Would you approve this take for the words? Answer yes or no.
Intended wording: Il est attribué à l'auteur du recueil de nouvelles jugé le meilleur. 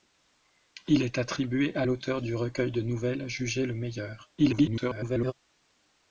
no